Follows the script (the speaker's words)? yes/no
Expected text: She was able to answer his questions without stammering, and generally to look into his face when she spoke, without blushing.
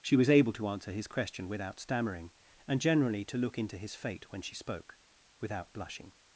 no